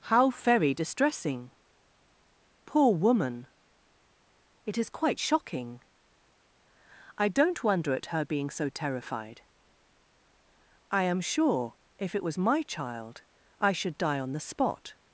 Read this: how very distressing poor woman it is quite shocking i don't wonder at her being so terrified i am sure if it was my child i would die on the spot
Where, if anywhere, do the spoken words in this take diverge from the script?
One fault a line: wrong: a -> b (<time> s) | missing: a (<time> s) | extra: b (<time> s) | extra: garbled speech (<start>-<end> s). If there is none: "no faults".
wrong: would -> should (13.7 s)